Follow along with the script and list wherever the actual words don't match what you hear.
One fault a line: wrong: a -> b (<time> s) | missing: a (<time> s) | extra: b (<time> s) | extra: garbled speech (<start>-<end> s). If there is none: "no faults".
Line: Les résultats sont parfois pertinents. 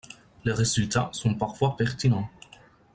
no faults